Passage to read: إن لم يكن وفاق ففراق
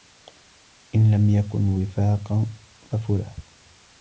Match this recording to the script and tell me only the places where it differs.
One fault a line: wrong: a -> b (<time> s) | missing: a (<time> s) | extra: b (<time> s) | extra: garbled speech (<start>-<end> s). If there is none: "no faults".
no faults